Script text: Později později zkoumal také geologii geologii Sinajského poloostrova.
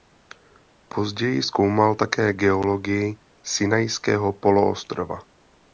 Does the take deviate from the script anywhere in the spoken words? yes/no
yes